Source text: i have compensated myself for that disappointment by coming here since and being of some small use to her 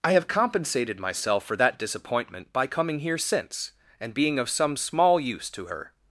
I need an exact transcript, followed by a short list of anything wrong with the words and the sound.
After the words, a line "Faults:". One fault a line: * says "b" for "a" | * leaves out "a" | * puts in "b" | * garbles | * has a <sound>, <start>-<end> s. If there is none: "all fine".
i have compensated myself for that disappointment by coming here since and being of some small use to her
Faults:
all fine